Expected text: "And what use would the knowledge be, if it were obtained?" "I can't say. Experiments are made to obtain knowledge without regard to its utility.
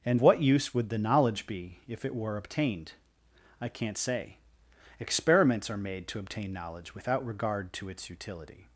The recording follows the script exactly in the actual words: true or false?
true